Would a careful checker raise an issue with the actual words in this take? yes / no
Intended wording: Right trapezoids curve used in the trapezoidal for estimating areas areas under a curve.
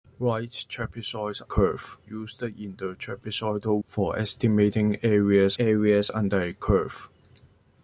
no